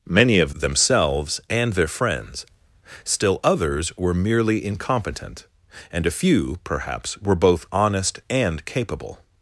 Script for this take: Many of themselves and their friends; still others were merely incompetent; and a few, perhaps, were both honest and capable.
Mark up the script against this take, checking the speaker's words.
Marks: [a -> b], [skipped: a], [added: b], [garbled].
Many of themselves and their friends; still others were merely incompetent; and a few, perhaps, were both honest and capable.